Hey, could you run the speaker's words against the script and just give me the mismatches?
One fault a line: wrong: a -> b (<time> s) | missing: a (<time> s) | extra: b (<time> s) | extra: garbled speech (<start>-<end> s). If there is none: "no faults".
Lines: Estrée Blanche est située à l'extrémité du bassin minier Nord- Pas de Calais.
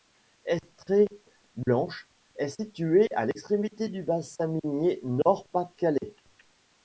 no faults